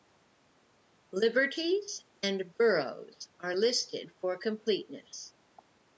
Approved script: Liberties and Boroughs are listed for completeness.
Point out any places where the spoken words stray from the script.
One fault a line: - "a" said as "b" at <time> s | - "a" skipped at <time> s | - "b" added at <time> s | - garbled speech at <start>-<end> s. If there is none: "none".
none